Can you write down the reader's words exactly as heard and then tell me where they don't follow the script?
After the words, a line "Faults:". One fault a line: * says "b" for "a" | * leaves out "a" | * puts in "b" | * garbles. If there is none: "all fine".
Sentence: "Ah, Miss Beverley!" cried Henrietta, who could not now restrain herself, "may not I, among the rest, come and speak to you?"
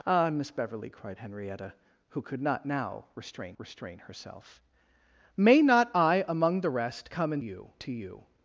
"Ah, Miss Beverley!" cried Henrietta, who could not now restrain restrain herself, "may not I, among the rest, come and you to you?"
Faults:
* puts in "restrain"
* says "you" for "speak"